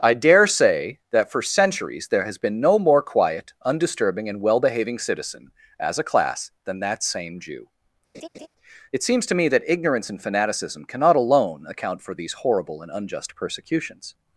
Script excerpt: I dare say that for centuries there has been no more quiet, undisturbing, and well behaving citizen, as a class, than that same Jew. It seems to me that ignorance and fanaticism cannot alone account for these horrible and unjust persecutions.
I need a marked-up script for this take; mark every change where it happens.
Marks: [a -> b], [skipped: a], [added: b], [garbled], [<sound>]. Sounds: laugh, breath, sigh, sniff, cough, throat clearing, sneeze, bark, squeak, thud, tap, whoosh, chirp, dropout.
I dare say that for centuries there has been no more quiet, undisturbing, and well behaving citizen, as a class, than that same Jew. [laugh] It seems to me that ignorance and fanaticism cannot alone account for these horrible and unjust persecutions.